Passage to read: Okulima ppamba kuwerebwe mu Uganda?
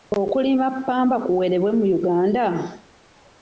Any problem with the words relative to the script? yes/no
no